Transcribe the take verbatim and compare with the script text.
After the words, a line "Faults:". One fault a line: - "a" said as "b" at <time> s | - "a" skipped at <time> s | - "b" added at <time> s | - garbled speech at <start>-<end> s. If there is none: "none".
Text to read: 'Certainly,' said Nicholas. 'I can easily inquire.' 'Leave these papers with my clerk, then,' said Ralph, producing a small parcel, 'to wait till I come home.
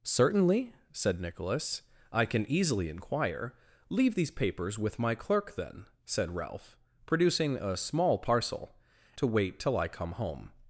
'Certainly,' said Nicholas. 'I can easily inquire.' 'Leave these papers with my clerk, then,' said Ralph, producing a small parcel, 'to wait till I come home.
Faults:
none